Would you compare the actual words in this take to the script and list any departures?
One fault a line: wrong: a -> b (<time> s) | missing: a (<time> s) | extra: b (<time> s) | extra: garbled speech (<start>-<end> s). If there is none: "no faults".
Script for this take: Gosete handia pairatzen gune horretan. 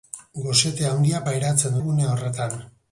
no faults